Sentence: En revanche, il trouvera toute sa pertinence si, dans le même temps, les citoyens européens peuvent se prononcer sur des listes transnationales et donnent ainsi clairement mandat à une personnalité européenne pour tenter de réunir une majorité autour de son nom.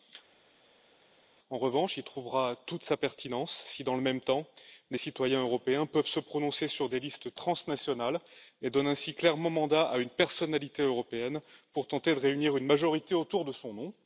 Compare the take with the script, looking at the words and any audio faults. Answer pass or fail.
pass